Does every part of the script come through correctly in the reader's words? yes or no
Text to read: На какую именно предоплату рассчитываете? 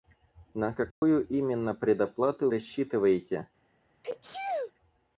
yes